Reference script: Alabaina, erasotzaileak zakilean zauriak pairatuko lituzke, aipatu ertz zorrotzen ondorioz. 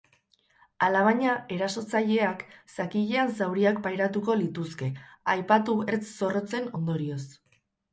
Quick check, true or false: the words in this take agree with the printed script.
true